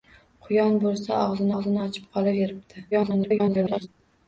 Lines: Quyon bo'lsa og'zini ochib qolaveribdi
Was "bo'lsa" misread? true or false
false